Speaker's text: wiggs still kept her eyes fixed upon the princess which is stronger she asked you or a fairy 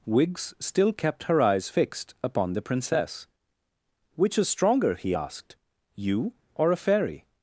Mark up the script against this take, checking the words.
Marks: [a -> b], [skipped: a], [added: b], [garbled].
wiggs still kept her eyes fixed upon the princess which is stronger [she -> he] asked you or a fairy